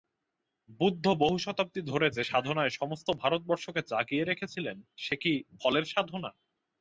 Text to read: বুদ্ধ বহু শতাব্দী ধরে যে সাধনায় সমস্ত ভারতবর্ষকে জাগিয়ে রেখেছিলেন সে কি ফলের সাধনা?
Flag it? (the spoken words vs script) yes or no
no